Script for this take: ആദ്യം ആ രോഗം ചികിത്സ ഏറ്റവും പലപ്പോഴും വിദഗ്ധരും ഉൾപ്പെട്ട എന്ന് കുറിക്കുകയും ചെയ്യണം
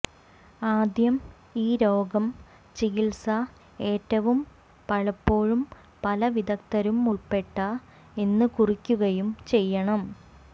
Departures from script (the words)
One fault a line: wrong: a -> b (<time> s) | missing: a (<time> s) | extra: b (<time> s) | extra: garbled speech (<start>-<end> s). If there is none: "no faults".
wrong: ആ -> ഈ (1.6 s)
extra: പല (6.0 s)